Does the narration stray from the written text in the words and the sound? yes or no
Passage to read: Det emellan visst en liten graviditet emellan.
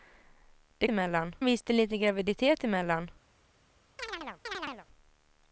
yes